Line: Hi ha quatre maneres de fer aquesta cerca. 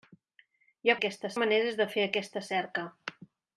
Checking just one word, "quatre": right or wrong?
wrong